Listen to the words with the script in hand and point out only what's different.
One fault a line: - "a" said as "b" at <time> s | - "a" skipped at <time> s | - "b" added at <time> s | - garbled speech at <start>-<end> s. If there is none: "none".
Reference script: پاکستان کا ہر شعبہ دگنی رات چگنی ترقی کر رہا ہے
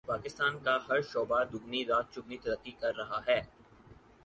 none